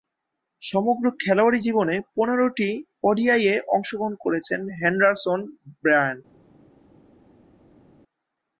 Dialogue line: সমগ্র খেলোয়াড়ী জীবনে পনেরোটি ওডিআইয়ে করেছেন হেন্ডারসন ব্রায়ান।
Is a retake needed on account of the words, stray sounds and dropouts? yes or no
yes